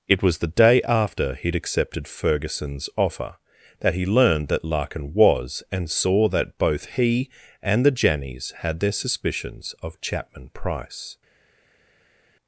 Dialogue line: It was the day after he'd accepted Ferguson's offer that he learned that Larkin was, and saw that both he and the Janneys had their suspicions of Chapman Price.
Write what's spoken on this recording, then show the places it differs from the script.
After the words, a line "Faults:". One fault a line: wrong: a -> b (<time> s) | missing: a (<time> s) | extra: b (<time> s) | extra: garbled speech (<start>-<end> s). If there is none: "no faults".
It was the day after he'd accepted Ferguson's offer that he learned that Larkin was, and saw that both he and the Janneys had their suspicions of Chapman Price.
Faults:
no faults